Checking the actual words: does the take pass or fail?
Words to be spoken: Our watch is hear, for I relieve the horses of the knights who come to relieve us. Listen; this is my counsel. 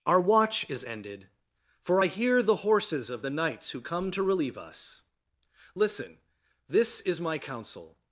fail